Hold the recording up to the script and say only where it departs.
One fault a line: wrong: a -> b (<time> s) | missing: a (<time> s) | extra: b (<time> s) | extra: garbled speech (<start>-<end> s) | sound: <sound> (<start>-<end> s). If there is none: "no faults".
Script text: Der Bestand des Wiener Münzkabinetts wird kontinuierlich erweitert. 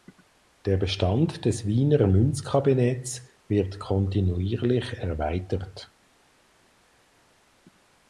no faults